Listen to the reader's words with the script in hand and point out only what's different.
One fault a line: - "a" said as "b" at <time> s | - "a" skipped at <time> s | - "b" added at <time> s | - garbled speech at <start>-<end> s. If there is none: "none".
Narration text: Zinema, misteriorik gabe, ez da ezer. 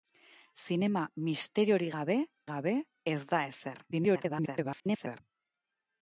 - "gabe" added at 2.5 s
- garbled speech at 3.9-5.2 s